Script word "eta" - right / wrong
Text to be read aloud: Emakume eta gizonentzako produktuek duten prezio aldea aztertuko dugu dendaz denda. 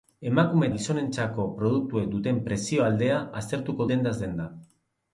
wrong